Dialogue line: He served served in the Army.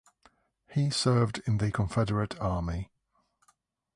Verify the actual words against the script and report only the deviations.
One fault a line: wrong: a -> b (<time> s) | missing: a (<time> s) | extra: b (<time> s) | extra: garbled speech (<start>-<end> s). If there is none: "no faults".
missing: served (1.4 s)
extra: Confederate (1.7 s)